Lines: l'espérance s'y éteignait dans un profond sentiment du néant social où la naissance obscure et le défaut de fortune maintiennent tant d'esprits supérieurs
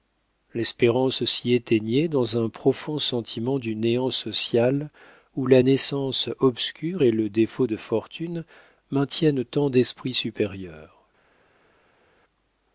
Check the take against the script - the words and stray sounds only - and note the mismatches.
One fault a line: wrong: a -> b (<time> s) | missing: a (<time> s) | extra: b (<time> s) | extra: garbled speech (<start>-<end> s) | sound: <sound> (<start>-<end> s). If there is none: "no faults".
no faults